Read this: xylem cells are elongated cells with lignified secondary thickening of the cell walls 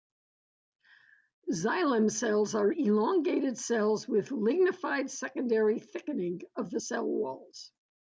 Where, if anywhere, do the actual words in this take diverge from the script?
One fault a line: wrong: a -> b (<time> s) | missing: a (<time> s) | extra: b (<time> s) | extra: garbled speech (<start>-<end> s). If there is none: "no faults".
no faults